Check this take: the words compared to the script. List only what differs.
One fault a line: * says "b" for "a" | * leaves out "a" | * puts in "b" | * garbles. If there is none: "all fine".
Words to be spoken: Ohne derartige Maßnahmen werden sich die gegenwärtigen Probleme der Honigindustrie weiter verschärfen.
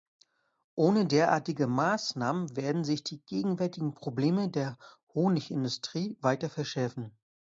all fine